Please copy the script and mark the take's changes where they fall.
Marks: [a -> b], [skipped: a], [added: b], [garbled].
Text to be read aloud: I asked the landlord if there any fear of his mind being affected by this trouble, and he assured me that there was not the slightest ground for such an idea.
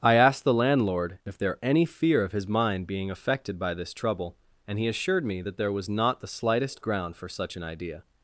I asked the landlord if there any fear of his mind being affected by this trouble, and he assured me that there was not the slightest ground for such an idea.